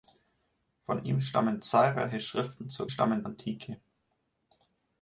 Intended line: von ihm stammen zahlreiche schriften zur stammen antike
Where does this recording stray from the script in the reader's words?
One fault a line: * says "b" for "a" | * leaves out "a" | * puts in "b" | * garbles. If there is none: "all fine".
all fine